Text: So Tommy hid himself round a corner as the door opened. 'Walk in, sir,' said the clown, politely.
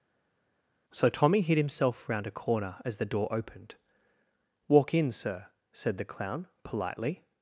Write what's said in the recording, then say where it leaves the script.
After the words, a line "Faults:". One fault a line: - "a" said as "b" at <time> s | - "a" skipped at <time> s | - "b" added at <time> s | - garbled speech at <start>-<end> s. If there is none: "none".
So Tommy hid himself round a corner as the door opened. 'Walk in, sir,' said the clown, politely.
Faults:
none